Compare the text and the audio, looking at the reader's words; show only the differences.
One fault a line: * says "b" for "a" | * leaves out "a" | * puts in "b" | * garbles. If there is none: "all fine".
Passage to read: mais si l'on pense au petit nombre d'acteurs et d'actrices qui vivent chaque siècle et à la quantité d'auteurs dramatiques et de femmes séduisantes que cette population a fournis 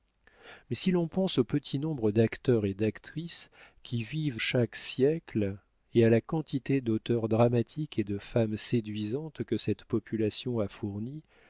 all fine